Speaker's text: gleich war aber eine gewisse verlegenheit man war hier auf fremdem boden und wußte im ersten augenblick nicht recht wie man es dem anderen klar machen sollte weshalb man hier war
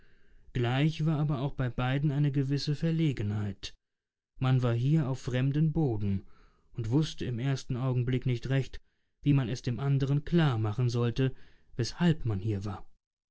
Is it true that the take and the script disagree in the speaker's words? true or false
true